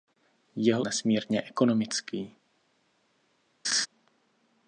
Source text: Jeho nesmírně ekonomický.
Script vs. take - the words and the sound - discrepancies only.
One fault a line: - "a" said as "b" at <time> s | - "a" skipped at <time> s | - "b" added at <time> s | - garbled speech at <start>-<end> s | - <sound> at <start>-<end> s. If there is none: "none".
- laugh at 3.6-3.9 s